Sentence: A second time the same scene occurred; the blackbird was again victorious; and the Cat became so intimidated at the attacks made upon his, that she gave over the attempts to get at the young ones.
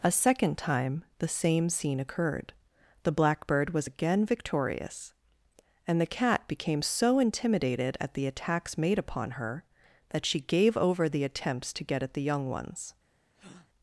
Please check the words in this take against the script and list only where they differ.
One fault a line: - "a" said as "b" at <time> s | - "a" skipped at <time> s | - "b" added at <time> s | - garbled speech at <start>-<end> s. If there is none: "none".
- "his" said as "her" at 9.3 s